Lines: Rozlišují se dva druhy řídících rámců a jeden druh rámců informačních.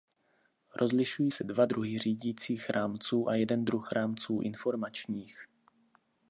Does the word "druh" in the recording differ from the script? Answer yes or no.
no